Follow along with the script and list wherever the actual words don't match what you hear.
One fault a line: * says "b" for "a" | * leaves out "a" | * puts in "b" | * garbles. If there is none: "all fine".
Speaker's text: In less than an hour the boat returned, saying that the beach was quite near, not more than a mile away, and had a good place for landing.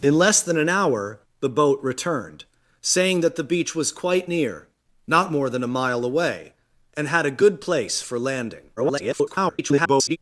* garbles